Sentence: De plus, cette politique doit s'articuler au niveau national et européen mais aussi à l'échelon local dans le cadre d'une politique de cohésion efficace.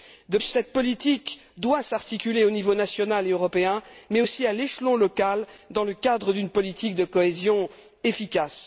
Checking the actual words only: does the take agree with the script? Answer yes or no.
no